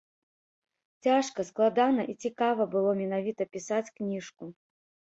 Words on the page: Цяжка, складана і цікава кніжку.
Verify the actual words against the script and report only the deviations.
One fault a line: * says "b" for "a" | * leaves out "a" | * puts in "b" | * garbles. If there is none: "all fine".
* puts in "было менавіта пісаць"